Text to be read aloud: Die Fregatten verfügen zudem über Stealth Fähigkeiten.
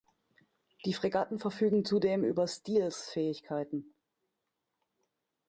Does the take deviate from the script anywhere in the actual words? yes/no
no